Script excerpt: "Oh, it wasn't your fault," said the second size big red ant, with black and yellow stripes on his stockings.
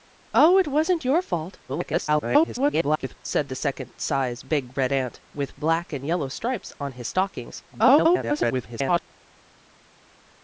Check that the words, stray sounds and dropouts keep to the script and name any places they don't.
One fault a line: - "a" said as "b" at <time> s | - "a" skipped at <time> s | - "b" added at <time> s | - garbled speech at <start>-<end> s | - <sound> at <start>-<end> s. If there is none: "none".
- garbled speech at 1.7-3.2 s
- garbled speech at 7.7-9.0 s